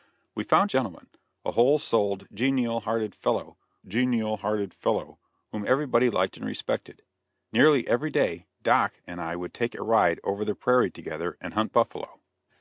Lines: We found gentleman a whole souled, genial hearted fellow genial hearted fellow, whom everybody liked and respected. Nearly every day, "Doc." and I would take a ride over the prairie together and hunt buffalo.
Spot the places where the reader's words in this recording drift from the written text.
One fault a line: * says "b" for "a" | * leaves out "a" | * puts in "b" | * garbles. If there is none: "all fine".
all fine